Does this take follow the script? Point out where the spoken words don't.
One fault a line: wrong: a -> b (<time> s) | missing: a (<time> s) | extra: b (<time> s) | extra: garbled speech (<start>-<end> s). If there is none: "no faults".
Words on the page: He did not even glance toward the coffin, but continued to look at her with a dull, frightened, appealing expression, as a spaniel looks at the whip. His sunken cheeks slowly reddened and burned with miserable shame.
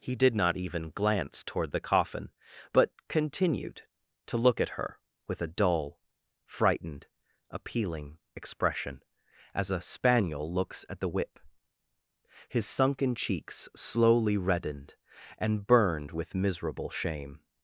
no faults